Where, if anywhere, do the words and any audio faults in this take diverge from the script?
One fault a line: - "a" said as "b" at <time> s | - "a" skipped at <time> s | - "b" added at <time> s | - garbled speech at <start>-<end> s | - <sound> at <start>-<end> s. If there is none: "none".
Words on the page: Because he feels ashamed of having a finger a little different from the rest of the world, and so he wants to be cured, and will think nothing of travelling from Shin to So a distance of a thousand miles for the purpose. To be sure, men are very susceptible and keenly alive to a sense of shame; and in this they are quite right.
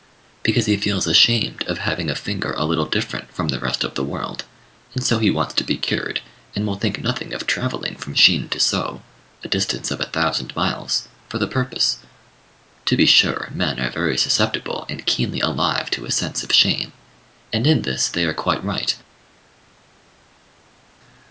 none